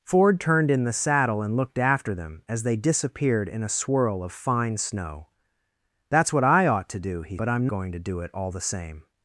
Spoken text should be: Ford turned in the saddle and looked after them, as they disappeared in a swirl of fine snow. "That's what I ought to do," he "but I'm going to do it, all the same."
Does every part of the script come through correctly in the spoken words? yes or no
yes